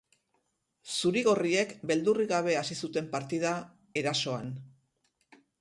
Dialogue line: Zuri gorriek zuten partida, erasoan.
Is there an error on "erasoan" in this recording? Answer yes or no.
no